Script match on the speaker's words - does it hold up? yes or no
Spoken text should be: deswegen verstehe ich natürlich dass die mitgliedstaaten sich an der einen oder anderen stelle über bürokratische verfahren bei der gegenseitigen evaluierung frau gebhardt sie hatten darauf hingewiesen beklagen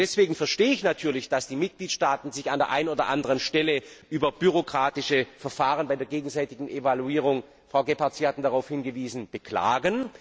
yes